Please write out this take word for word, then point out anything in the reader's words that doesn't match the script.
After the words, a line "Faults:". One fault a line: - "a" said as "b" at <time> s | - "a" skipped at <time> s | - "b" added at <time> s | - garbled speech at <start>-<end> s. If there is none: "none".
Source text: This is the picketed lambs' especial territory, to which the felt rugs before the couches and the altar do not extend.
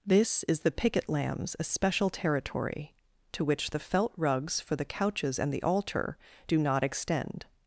This is the picket lambs' especial territory, to which the felt rugs for the couches and the altar do not extend.
Faults:
- "picketed" said as "picket" at 0.7 s
- "before" said as "for" at 4.6 s